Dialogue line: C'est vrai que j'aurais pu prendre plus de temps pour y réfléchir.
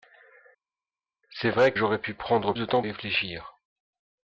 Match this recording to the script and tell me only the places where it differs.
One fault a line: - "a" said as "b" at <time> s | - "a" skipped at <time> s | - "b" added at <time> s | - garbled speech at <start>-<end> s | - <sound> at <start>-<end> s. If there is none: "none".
- "que" skipped at 1.7 s
- "plus" skipped at 2.5 s
- "pour" skipped at 2.8 s